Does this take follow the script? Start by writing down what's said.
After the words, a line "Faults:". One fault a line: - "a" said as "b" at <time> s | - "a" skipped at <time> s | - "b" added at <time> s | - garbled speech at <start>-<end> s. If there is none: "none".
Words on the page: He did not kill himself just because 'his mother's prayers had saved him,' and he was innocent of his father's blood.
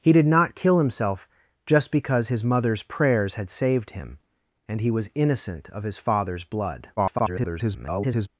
He did not kill himself just because 'his mother's prayers had saved him,' and he was innocent of his father's blood. [garbled]
Faults:
- garbled speech at 7.0-8.3 s